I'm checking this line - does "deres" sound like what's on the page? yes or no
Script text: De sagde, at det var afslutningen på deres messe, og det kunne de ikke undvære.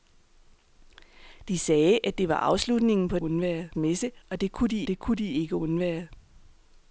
no